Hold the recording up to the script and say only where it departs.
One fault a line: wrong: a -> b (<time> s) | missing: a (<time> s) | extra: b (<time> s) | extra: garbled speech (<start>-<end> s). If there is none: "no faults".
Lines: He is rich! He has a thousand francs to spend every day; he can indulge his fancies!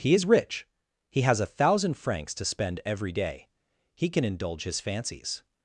no faults